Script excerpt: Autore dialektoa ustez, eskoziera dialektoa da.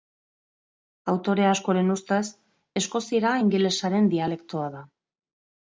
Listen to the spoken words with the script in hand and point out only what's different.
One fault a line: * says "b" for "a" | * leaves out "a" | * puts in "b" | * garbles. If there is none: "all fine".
* says "askoren" for "dialektoa"
* puts in "ingelesaren"